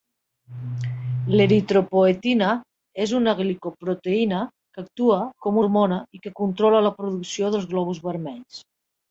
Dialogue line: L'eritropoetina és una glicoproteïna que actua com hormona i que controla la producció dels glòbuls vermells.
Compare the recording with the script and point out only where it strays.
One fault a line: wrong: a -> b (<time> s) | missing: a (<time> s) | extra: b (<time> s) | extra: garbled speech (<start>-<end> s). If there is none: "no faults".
no faults